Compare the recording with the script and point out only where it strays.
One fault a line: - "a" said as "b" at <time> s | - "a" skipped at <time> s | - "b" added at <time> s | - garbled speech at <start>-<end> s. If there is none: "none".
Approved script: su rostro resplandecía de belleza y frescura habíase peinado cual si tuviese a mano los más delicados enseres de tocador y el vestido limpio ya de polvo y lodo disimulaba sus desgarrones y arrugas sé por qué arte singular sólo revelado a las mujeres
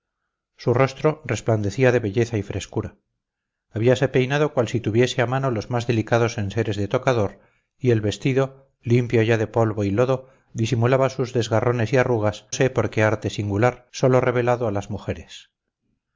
none